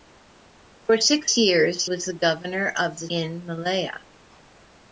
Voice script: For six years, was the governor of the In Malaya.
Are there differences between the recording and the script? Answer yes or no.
no